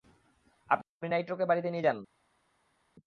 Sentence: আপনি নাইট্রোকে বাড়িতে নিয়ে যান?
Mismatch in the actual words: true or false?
false